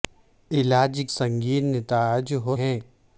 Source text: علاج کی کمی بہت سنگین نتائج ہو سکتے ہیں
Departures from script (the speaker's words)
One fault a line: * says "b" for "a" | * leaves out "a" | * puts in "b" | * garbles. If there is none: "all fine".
* leaves out "کی کمی بہت"
* leaves out "سکتے"